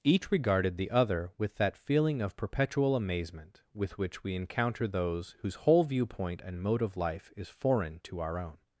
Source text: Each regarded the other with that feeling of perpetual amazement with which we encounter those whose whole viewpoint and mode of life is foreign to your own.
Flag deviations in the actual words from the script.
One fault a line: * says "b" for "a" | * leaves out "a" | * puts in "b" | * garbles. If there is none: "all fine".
* says "our" for "your"